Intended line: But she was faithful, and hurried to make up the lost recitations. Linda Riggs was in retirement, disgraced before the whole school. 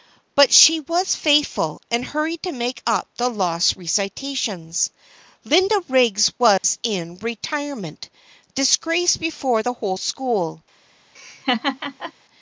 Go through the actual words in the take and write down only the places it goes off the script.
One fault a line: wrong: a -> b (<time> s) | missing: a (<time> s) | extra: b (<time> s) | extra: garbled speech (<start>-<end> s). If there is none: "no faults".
no faults